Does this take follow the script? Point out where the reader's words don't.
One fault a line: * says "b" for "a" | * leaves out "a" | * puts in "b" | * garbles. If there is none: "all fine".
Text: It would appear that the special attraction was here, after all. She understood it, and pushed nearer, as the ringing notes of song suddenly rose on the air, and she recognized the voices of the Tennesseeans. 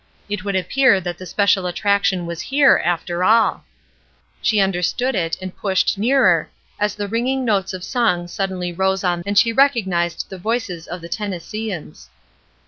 * leaves out "the air"